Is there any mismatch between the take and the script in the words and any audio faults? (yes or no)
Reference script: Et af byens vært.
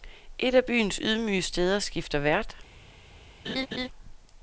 yes